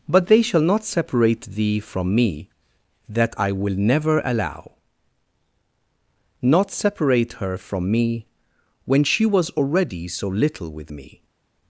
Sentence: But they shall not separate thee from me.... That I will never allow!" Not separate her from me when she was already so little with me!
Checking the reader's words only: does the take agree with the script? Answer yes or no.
yes